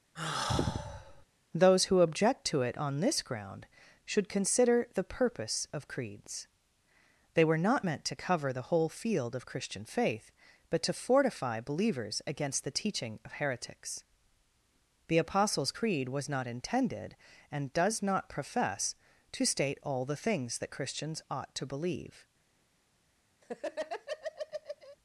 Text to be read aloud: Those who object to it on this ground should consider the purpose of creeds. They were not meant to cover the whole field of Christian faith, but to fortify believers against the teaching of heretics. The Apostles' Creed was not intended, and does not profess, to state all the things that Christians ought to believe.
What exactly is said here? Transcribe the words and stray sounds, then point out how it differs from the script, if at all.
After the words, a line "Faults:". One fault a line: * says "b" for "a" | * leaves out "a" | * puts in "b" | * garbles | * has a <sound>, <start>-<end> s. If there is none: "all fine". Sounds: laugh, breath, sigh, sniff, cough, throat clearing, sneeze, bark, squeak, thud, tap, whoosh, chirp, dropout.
Those who object to it on this ground should consider the purpose of creeds. They were not meant to cover the whole field of Christian faith, but to fortify believers against the teaching of heretics. The Apostles' Creed was not intended, and does not profess, to state all the things that Christians ought to believe.
Faults:
* has a sigh, 0.2-1.3 s
* has a laugh, 23.4-25.0 s